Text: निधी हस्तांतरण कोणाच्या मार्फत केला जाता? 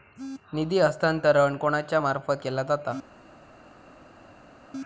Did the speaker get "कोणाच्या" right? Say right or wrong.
right